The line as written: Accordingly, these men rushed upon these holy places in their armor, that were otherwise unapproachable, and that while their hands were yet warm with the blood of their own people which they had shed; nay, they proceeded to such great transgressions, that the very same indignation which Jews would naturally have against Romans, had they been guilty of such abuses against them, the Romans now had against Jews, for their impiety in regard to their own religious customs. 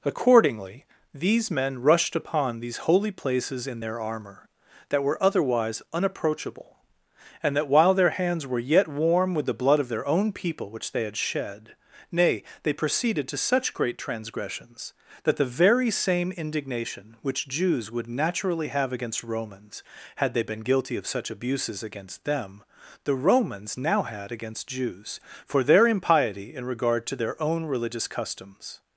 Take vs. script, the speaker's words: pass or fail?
pass